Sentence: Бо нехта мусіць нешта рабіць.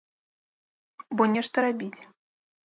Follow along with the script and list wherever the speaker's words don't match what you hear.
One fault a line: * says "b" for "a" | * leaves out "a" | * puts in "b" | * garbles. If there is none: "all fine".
* leaves out "нехта мусіць"